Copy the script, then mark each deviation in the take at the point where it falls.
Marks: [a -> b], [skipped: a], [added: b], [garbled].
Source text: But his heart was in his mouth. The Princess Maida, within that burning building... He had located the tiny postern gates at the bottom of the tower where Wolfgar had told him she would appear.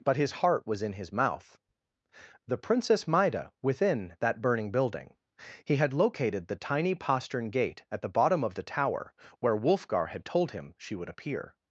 But his heart was in his mouth. The Princess Maida, within that burning building... He had located the tiny postern [gates -> gate] at the bottom of the tower where Wolfgar had told him she would appear.